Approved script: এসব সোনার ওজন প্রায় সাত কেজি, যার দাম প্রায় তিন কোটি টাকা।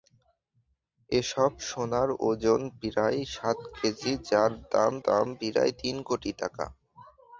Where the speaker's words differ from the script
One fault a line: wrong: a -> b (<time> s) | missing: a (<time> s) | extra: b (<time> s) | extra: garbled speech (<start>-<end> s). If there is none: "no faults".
extra: দাম (5.0 s)